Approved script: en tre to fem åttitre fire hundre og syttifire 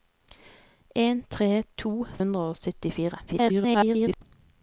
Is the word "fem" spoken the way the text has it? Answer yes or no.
no